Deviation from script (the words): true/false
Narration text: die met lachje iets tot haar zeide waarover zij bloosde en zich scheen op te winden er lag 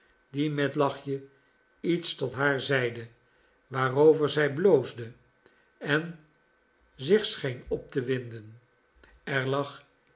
false